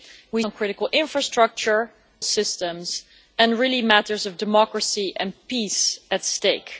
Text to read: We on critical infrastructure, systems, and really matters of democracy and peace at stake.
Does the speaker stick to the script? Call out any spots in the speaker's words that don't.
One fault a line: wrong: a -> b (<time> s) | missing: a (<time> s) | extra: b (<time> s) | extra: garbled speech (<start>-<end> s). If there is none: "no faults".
no faults